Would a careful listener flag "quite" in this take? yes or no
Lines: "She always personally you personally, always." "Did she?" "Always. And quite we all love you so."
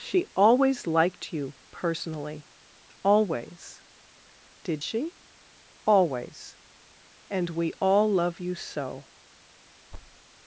yes